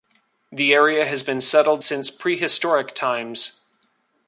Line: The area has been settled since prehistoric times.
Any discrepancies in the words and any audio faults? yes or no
no